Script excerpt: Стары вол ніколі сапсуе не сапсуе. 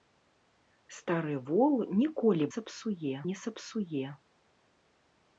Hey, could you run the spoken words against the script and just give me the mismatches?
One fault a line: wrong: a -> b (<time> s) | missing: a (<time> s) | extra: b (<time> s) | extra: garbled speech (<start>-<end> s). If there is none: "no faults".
no faults